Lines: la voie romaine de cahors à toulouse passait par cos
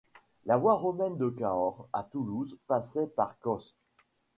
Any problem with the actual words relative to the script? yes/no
no